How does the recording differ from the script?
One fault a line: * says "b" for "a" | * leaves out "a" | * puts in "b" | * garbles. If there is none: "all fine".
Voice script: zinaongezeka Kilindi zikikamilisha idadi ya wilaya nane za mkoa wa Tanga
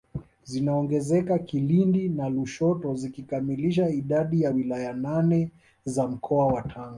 * puts in "na Lushoto"